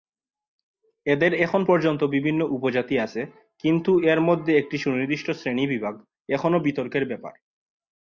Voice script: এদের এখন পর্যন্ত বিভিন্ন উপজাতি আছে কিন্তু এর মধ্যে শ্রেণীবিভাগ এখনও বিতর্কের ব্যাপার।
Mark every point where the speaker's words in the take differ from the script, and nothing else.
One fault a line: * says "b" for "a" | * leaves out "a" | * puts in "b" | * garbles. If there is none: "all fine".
* puts in "একটি সুনির্দিষ্ট"